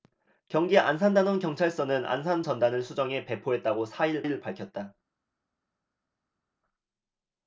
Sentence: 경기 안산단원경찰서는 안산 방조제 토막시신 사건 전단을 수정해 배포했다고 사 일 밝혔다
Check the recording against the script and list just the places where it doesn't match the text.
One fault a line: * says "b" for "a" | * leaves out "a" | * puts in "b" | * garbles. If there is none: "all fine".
* leaves out "방조제 토막시신 사건"
* puts in "일"